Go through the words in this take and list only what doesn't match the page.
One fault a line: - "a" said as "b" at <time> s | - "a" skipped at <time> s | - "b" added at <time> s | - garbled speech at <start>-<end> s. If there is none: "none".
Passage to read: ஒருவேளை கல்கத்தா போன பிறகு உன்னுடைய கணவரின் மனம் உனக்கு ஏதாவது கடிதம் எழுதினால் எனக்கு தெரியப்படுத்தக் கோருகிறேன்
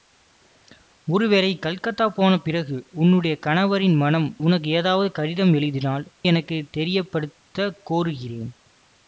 none